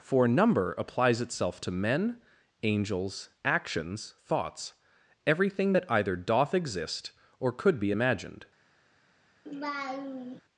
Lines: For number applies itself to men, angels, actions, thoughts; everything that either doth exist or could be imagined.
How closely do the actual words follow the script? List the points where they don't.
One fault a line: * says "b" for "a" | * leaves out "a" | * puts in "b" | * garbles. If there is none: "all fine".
all fine